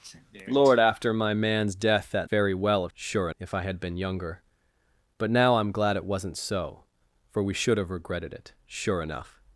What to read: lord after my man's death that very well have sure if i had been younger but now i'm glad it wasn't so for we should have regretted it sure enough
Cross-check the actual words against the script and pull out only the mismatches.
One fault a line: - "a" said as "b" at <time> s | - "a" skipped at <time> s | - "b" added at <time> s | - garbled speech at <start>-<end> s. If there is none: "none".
none